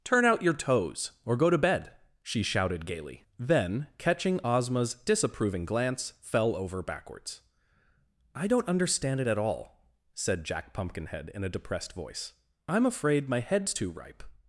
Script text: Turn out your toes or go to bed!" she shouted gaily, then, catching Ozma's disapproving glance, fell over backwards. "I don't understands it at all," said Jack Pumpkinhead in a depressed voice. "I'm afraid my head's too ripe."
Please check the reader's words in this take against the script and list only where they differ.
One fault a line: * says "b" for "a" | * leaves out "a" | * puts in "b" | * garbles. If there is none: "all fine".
* says "understand" for "understands"